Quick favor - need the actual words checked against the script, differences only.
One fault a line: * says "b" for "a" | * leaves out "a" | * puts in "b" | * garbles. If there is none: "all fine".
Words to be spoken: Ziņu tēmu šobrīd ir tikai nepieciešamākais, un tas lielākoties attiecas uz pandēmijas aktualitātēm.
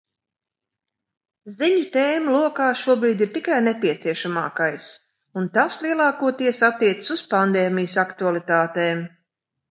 * puts in "lokā"